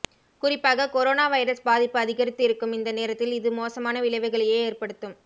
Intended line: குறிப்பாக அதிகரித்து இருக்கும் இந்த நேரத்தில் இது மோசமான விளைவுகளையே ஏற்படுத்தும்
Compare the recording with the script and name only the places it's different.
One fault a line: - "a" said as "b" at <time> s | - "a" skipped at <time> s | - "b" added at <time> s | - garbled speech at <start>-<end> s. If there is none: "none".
- "கொரோனா வைரஸ் பாதிப்பு" added at 0.9 s